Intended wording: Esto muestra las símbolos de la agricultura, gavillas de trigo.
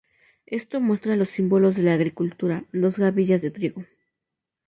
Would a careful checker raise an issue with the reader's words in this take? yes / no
yes